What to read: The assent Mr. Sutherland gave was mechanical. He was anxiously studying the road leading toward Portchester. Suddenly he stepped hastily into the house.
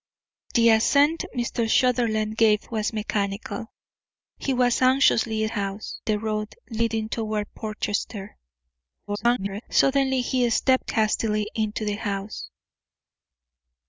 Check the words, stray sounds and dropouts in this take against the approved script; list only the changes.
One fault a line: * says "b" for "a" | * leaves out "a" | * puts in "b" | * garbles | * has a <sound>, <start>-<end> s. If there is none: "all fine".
* says "house" for "studying"
* garbles